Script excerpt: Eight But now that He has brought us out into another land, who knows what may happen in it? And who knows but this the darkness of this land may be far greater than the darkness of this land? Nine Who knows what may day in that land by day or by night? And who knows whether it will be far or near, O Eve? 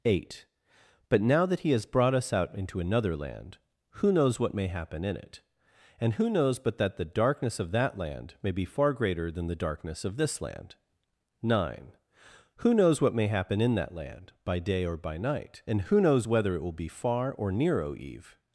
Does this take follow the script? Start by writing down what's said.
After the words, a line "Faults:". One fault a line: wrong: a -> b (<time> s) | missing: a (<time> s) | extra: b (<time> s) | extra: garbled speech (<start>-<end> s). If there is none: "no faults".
Eight But now that He has brought us out into another land, who knows what may happen in it? And who knows but that the darkness of that land may be far greater than the darkness of this land? Nine Who knows what may happen in that land by day or by night? And who knows whether it will be far or near, O Eve?
Faults:
wrong: this -> that (6.8 s)
wrong: this -> that (7.7 s)
wrong: day -> happen (13.3 s)